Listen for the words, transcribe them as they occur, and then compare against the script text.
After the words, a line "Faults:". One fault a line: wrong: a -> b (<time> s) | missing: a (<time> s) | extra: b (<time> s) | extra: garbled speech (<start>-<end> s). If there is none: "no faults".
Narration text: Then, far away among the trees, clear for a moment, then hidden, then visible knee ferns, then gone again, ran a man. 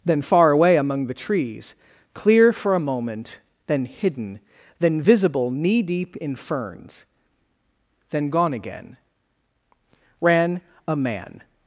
Then, far away among the trees, clear for a moment, then hidden, then visible knee deep in ferns, then gone again, ran a man.
Faults:
extra: deep in (5.8 s)